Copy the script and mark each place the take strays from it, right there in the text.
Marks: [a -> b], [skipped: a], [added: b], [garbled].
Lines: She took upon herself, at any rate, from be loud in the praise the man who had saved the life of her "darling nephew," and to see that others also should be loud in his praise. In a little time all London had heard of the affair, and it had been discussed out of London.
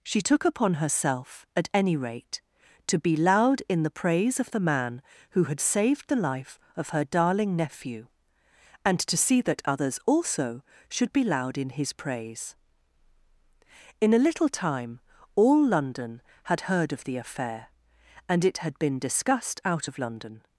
She took upon herself, at any rate, [from -> to] be loud in the praise [added: of] the man who had saved the life of her "darling nephew," and to see that others also should be loud in his praise. In a little time all London had heard of the affair, and it had been discussed out of London.